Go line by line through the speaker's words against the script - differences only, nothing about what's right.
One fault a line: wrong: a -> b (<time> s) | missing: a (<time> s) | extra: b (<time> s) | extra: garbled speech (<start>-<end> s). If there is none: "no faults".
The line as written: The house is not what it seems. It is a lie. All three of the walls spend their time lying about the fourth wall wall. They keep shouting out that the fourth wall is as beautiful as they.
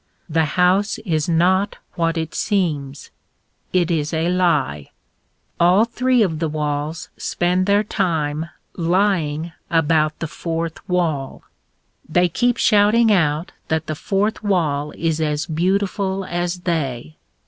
missing: wall (11.4 s)